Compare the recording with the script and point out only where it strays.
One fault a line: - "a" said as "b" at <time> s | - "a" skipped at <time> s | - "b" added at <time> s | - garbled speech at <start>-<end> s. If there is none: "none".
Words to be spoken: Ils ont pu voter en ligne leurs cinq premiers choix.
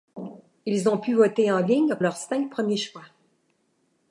none